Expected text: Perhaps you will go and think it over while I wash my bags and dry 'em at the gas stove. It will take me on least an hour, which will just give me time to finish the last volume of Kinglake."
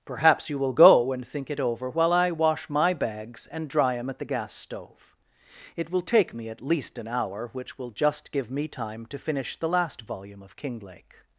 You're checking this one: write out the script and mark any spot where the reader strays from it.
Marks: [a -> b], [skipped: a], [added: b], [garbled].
Perhaps you will go and think it over while I wash my bags and dry 'em at the gas stove. It will take me [on -> at] least an hour, which will just give me time to finish the last volume of Kinglake."